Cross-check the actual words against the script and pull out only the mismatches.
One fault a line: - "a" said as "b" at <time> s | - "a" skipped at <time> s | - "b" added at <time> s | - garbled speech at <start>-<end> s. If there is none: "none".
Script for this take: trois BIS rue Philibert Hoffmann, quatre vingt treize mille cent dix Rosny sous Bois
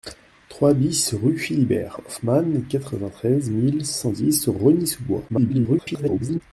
- garbled speech at 5.3-6.4 s